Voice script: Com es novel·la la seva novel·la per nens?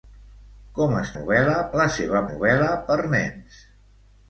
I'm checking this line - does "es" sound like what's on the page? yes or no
yes